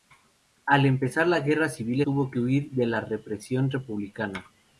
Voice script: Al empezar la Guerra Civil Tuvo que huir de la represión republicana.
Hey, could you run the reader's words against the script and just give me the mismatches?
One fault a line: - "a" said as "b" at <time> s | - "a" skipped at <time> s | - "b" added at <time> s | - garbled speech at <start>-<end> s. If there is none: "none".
none